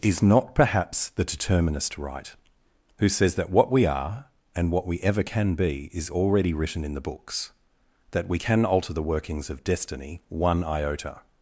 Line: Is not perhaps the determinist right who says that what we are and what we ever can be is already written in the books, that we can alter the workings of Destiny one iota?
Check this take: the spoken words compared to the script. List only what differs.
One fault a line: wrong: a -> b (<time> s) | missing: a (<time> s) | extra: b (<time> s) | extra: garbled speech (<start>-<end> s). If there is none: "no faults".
no faults